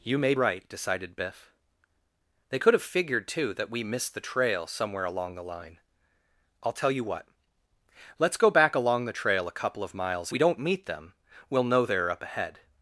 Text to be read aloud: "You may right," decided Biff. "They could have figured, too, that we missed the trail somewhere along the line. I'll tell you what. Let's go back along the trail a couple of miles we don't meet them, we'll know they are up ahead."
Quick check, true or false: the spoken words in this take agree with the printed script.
true